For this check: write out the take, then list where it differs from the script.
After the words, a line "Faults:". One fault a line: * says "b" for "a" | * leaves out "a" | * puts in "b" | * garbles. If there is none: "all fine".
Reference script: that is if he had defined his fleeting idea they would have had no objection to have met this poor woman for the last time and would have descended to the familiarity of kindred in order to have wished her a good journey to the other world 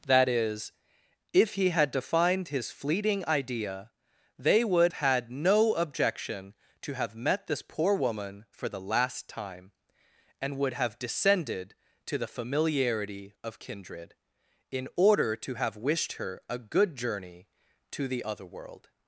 that is if he had defined his fleeting idea they would had no objection to have met this poor woman for the last time and would have descended to the familiarity of kindred in order to have wished her a good journey to the other world
Faults:
* leaves out "have"